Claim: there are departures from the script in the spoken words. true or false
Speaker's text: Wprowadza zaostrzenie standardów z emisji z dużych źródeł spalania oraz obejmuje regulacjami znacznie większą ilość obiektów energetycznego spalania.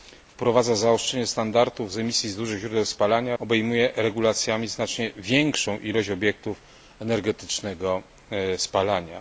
true